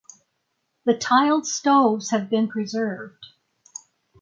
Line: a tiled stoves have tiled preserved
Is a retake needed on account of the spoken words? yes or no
yes